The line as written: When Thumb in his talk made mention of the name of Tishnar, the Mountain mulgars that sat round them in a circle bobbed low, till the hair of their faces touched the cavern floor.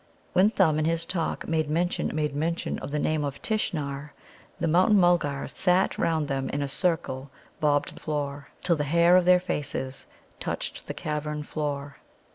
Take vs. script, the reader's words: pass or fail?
fail